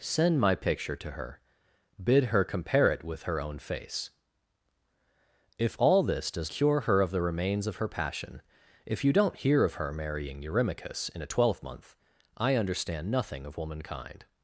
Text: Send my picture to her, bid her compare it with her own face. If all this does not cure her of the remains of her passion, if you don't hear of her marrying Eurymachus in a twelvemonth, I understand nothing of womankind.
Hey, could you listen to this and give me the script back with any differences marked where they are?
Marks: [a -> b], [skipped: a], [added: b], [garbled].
Send my picture to her, bid her compare it with her own face. If all this does [skipped: not] cure her of the remains of her passion, if you don't hear of her marrying Eurymachus in a twelvemonth, I understand nothing of womankind.